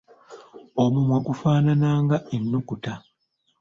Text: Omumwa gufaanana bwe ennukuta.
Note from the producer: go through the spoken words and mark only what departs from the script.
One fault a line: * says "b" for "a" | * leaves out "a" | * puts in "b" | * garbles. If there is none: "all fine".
* says "nga" for "bwe"